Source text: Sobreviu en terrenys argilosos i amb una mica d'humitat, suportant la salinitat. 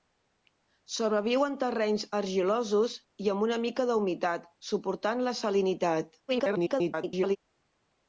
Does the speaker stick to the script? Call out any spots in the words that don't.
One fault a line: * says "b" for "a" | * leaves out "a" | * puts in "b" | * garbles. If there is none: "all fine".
* garbles